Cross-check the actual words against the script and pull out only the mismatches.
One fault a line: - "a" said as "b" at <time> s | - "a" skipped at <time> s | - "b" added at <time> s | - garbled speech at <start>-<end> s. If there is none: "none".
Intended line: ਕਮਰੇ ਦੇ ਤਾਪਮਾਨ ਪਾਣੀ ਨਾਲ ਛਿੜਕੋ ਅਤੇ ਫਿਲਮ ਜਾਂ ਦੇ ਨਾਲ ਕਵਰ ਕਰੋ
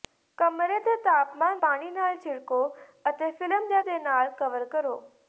none